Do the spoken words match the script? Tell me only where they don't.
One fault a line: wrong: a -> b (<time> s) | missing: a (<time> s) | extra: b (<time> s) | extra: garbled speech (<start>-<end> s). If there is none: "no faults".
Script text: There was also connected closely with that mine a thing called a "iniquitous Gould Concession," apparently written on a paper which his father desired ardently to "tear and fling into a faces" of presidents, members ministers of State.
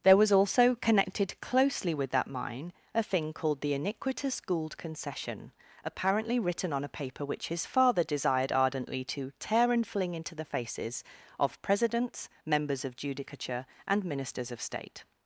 wrong: a -> the (3.6 s)
wrong: a -> the (10.3 s)
extra: of judicature and (12.8 s)